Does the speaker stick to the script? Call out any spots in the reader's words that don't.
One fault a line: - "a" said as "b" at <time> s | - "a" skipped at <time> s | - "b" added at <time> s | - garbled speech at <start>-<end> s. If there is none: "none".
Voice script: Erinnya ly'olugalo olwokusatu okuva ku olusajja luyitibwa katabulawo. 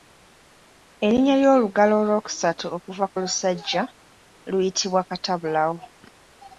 none